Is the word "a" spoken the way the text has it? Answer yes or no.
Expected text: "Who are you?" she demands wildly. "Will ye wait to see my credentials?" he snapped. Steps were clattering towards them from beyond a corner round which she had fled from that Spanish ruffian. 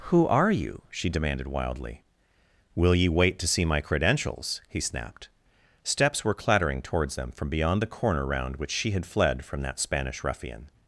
no